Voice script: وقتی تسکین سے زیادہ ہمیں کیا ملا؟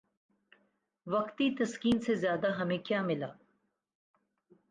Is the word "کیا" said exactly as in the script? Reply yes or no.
yes